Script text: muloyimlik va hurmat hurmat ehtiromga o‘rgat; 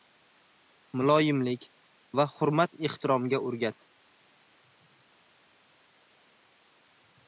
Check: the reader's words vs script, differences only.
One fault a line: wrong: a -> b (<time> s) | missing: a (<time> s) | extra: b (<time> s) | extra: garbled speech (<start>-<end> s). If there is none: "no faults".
missing: hurmat (2.8 s)